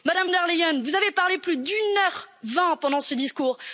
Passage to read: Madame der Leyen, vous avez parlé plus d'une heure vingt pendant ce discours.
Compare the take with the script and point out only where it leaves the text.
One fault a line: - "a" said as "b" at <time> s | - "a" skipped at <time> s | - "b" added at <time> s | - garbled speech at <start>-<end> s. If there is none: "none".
none